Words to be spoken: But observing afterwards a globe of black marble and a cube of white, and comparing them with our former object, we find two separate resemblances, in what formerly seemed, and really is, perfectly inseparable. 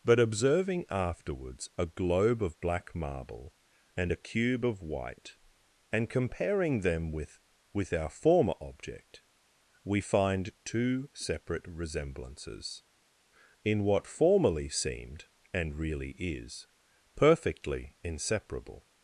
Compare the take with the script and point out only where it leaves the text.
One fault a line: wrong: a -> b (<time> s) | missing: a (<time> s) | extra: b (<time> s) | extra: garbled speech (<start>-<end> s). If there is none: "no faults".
extra: with (7.7 s)